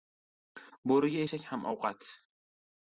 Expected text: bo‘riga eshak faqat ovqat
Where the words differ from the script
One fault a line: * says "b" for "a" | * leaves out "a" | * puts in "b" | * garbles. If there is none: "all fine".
* says "ham" for "faqat"